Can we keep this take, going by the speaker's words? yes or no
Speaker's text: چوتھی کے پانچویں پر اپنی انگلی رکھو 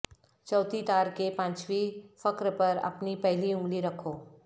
no